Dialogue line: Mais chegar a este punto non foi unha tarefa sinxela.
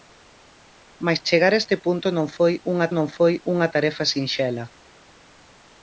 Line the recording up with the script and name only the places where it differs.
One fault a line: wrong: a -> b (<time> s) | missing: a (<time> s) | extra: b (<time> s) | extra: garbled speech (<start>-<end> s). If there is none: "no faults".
extra: non foi unha (3.0 s)